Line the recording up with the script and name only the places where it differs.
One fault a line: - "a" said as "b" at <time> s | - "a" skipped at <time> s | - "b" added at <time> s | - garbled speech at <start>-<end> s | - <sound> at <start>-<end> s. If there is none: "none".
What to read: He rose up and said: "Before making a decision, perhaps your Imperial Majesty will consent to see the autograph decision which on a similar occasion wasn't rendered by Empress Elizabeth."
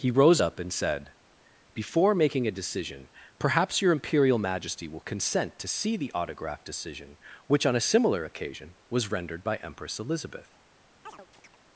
- "wasn't" said as "was" at 8.9 s
- chirp at 11.1-11.6 s